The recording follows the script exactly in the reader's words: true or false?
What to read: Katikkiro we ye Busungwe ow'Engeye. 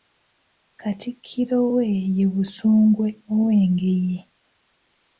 true